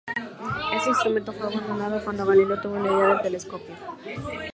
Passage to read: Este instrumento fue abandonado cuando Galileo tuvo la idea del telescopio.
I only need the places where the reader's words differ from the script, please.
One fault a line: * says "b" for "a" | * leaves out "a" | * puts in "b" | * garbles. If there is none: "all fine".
all fine